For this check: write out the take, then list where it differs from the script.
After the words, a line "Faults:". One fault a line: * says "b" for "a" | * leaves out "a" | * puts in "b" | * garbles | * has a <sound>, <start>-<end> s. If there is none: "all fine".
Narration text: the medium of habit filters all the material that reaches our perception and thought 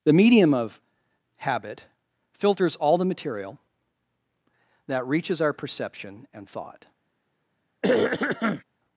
the medium of habit filters all the material that reaches our perception and thought
Faults:
* has a throat clearing, 7.8-8.6 s